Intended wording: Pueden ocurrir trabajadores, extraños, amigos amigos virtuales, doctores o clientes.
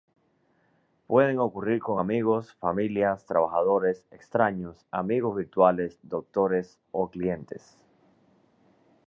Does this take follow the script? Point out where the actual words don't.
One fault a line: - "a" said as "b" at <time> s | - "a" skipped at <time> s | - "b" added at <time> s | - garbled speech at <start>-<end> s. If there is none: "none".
- "con amigos familias" added at 1.8 s
- "amigos" skipped at 5.3 s